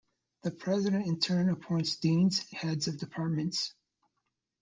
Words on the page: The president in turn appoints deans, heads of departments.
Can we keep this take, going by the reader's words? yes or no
yes